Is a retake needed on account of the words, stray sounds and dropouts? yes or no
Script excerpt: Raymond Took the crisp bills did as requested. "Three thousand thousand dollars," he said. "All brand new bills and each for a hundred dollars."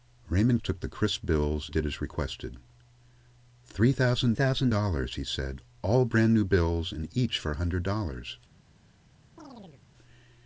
yes